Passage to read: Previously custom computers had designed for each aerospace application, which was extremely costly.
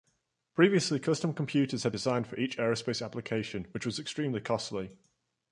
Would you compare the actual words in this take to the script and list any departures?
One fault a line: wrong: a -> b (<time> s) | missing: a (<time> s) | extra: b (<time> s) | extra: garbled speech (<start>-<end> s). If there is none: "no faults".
no faults